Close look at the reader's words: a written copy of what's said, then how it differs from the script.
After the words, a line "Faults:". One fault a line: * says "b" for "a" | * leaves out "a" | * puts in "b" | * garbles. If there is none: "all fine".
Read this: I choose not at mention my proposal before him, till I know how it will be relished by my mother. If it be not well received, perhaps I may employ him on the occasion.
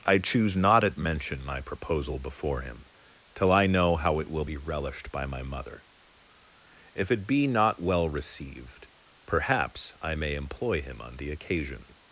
I choose not at mention my proposal before him, till I know how it will be relished by my mother. If it be not well received, perhaps I may employ him on the occasion.
Faults:
all fine